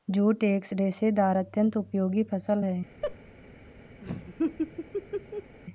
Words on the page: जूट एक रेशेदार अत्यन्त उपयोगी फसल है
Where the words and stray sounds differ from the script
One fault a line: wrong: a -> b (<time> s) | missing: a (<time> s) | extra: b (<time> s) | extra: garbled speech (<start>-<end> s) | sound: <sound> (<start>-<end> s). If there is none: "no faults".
sound: laugh (3.0-3.2 s)
sound: laugh (4.0-5.6 s)